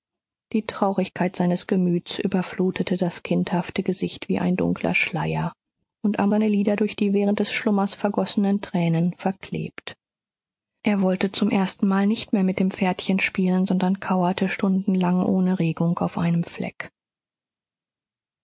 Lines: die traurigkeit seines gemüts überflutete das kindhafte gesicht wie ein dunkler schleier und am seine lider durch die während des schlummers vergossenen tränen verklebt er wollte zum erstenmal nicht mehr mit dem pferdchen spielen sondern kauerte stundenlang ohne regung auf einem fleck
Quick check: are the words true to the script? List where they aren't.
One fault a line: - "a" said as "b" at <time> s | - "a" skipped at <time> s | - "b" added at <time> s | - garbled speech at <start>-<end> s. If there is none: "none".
none